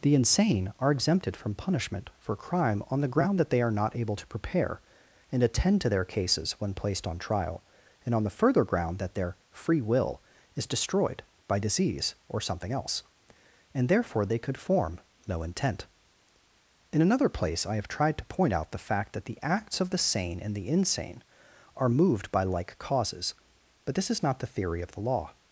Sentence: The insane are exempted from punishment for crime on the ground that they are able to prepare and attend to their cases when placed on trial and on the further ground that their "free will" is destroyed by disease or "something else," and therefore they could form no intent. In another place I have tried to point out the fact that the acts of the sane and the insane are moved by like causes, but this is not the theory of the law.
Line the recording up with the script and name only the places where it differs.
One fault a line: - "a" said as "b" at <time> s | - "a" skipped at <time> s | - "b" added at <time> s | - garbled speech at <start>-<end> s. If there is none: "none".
- "not" added at 3.7 s